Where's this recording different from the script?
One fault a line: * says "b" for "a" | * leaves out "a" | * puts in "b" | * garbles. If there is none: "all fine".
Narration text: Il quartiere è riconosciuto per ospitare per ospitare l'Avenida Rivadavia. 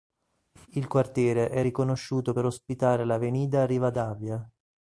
* leaves out "per ospitare"